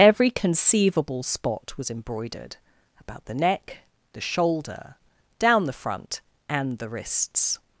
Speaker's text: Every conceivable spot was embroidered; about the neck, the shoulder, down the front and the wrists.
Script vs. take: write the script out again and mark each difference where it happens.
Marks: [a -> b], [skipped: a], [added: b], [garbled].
Every conceivable spot was embroidered; about the neck, the shoulder, down the front and the wrists.